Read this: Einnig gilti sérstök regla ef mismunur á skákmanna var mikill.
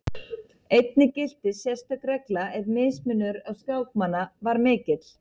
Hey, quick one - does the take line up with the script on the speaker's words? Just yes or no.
yes